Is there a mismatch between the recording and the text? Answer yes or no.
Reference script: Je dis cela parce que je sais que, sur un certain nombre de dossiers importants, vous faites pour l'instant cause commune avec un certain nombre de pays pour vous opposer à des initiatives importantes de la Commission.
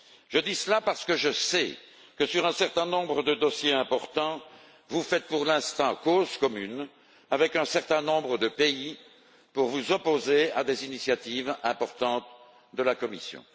no